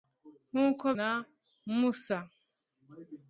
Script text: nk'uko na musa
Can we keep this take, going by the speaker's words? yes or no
yes